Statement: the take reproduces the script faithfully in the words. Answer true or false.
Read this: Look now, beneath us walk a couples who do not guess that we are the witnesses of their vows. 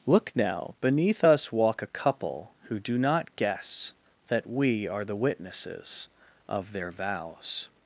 false